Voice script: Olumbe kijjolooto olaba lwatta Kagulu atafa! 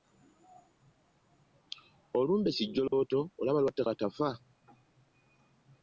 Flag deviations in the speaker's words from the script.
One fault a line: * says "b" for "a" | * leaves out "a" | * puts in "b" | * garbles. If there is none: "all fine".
* leaves out "Kagulu"